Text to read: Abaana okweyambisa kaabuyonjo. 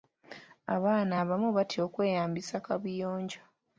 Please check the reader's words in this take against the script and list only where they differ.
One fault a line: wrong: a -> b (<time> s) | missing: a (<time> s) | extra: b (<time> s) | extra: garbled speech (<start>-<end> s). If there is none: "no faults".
extra: abamu batya (1.2 s)